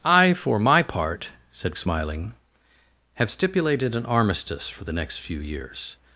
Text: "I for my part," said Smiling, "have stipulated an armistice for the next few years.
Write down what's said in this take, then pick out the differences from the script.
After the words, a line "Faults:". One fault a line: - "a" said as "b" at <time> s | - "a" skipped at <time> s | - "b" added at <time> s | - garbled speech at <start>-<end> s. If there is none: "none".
"I for my part," said Smiling, "have stipulated an armistice for the next few years.
Faults:
none